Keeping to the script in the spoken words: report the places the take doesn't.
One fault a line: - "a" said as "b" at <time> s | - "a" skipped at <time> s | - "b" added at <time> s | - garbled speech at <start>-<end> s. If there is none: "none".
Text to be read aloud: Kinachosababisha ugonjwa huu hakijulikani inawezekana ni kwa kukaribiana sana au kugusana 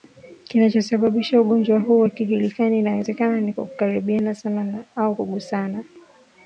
none